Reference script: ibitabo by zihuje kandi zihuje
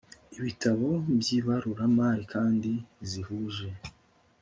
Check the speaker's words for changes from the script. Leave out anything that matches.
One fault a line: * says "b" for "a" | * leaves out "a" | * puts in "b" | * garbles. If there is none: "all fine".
* says "ibaruramari" for "zihuje"